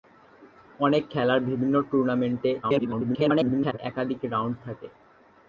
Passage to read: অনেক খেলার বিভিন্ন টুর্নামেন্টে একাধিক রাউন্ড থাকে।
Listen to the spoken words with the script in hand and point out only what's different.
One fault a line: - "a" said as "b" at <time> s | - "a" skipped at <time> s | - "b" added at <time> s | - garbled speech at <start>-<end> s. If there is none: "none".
- garbled speech at 2.6-3.8 s